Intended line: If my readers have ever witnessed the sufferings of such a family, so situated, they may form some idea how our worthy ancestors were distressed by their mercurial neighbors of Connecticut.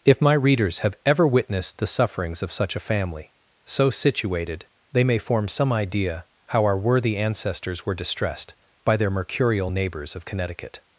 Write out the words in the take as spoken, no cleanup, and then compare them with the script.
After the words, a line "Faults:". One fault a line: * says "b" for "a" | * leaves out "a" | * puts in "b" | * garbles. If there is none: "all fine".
If my readers have ever witnessed the sufferings of such a family, so situated, they may form some idea how our worthy ancestors were distressed by their mercurial neighbors of Connecticut.
Faults:
all fine